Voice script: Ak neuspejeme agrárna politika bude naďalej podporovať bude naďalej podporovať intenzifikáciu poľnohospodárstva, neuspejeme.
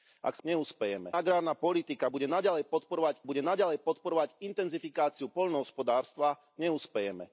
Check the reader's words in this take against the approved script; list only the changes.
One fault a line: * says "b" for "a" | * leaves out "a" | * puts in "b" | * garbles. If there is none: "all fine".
all fine